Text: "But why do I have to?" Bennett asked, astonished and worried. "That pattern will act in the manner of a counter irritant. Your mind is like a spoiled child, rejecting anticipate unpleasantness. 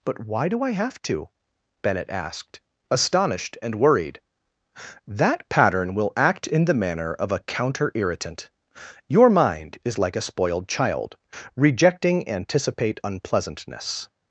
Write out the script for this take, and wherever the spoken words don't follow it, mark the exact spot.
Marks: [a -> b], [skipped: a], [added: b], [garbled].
"But why do I have to?" Bennett asked, astonished and worried. "That pattern will act in the manner of a counter irritant. Your mind is like a spoiled child, rejecting anticipate unpleasantness.